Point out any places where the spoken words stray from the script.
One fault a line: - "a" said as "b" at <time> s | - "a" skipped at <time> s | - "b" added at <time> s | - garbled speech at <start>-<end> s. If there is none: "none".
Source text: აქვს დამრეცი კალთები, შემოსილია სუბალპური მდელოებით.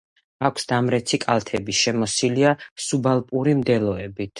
none